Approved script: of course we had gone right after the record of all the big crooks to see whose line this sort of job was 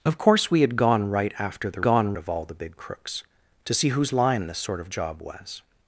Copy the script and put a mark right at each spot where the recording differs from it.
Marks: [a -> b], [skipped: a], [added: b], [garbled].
of course we had gone right after the [record -> gone] of all the big crooks to see whose line this sort of job was